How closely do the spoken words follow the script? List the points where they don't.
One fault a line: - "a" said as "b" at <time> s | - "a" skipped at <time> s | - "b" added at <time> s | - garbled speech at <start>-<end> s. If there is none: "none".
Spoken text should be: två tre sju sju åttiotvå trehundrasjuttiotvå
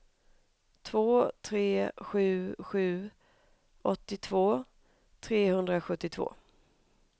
none